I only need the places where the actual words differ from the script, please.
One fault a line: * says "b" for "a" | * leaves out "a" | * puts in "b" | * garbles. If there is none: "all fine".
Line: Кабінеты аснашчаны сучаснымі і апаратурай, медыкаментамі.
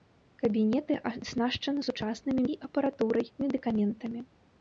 all fine